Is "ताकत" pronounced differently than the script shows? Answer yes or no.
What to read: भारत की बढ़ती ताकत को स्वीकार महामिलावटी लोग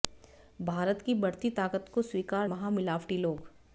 no